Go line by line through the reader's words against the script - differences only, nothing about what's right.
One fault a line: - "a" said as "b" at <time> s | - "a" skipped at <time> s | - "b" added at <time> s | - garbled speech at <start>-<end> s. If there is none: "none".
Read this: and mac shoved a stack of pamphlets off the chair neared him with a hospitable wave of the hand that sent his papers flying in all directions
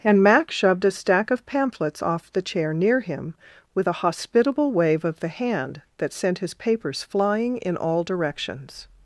- "neared" said as "near" at 2.7 s